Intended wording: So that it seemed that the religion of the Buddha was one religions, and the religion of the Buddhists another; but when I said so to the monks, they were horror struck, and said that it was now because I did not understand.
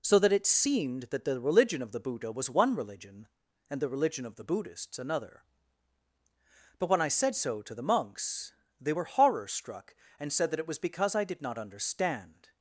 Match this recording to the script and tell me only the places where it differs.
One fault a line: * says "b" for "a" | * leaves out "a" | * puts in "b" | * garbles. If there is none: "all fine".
* says "religion" for "religions"
* leaves out "now"